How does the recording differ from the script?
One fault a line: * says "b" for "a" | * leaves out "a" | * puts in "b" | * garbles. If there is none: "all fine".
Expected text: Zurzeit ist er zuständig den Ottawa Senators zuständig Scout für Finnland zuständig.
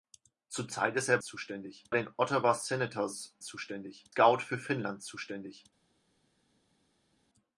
all fine